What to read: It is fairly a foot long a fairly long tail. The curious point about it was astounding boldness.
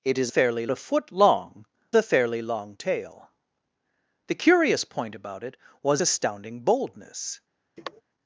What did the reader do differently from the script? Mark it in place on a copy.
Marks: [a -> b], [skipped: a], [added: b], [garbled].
It is fairly a foot long a fairly long tail. The curious point about it was astounding boldness.